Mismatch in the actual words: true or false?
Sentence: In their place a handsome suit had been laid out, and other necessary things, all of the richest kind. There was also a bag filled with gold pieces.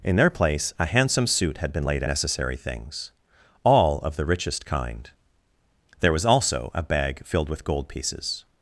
true